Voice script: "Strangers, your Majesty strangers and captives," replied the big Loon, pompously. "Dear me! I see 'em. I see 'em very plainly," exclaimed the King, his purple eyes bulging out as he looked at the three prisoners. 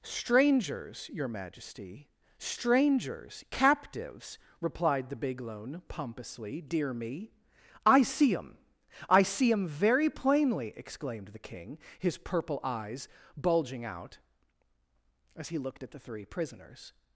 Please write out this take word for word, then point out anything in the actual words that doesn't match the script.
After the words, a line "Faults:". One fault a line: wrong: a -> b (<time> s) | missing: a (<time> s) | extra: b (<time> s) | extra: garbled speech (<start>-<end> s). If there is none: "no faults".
"Strangers, your Majesty strangers captives," replied the big Loon, pompously. "Dear me! I see 'em. I see 'em very plainly," exclaimed the King, his purple eyes bulging out as he looked at the three prisoners.
Faults:
missing: and (3.4 s)